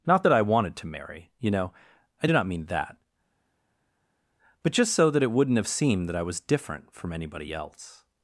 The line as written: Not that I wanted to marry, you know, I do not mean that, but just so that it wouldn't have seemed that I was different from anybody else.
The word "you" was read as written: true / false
true